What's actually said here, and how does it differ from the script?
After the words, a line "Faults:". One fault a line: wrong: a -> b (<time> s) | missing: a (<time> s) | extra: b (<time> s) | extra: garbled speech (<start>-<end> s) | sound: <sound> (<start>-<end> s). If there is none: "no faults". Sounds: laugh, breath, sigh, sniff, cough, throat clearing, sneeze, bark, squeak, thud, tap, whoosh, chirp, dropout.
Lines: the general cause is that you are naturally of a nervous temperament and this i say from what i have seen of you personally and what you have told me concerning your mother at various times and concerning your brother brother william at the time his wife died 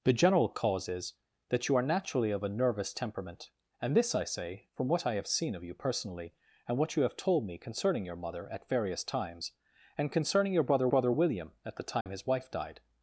the general cause is that you are naturally of a nervous temperament and this i say from what i have seen of you personally and what you have told me concerning your mother at various times and concerning your brother brother william at the time his wife died
Faults:
sound: dropout (12.0-12.1 s)